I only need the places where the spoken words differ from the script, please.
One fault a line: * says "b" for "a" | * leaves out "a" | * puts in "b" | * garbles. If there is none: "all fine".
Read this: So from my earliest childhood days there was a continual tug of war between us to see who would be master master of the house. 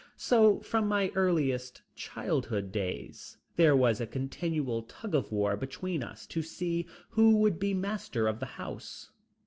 * leaves out "master"